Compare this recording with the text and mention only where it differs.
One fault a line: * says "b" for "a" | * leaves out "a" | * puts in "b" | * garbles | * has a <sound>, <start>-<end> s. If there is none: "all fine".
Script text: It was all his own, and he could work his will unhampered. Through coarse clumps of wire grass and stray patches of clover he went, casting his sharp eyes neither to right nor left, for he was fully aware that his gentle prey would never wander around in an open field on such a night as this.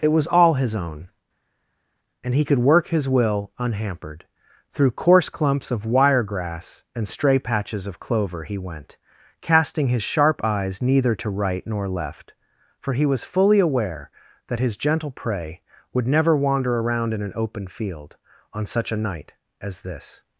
all fine